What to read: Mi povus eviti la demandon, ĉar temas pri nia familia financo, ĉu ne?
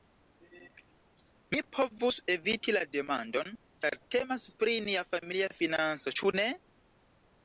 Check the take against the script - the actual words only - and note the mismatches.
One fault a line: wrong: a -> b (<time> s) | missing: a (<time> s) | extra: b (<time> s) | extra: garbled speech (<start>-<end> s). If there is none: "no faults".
no faults